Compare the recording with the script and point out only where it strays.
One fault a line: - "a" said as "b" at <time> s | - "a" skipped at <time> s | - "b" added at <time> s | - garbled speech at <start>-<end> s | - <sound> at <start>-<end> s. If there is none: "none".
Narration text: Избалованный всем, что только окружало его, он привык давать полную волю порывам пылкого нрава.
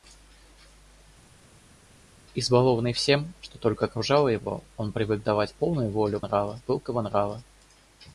- "порывам" said as "нрава" at 6.2 s